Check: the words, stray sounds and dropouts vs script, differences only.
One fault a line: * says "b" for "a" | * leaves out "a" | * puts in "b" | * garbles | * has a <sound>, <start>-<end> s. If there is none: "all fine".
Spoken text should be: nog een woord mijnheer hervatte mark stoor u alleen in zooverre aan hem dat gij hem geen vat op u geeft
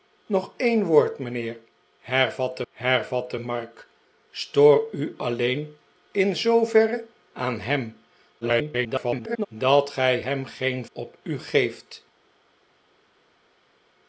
* puts in "hervatte"
* garbles
* leaves out "vat"